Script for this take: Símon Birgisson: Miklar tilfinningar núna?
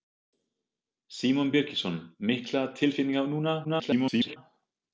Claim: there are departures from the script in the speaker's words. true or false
true